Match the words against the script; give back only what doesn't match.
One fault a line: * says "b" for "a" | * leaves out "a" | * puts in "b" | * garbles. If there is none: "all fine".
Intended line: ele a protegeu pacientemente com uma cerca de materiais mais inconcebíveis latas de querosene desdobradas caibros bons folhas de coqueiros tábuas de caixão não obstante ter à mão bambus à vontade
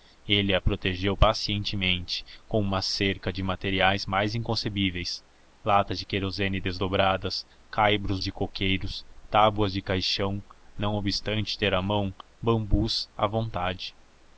* leaves out "bons folhas"